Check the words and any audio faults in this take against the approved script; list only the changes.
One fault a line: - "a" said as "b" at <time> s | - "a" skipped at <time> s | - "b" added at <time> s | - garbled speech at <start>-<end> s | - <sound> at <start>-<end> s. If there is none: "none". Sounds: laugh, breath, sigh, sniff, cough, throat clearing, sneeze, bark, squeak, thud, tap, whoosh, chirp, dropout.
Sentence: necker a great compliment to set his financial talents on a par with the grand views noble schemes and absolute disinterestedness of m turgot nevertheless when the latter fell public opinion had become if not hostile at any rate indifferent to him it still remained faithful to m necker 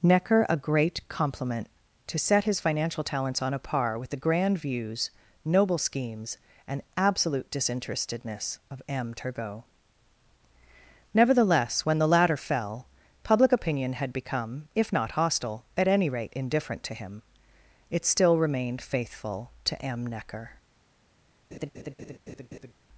- laugh at 21.5-22.7 s